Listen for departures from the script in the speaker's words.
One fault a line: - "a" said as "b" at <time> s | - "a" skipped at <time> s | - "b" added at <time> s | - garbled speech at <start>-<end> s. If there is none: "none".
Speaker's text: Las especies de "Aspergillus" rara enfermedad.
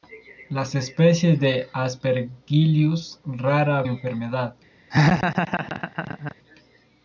none